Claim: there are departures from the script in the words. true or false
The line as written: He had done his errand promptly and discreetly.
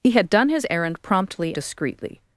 true